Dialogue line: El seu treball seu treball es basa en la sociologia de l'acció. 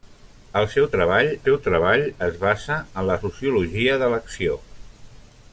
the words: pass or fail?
pass